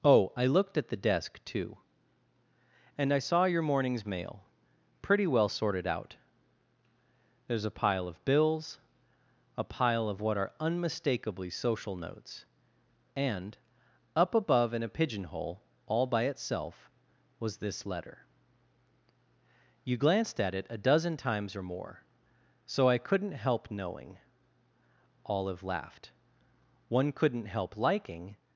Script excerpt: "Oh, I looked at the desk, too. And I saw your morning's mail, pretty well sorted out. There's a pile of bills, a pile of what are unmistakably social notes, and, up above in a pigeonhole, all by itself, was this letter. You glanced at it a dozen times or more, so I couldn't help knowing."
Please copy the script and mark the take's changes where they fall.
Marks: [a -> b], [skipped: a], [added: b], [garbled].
"Oh, I looked at the desk, too. And I saw your morning's mail, pretty well sorted out. There's a pile of bills, a pile of what are unmistakably social notes, and, up above in a pigeonhole, all by itself, was this letter. You glanced at it a dozen times or more, so I couldn't help knowing." [added: Olive laughed One couldn't help liking]